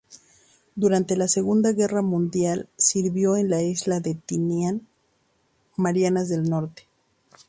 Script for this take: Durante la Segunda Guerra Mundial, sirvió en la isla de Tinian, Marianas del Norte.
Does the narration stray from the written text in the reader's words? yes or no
no